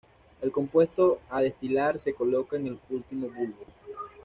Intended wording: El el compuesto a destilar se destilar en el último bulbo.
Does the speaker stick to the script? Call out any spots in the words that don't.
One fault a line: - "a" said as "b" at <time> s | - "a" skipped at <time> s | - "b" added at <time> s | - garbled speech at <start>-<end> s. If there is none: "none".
- "el" skipped at 0.5 s
- "destilar" said as "coloca" at 2.1 s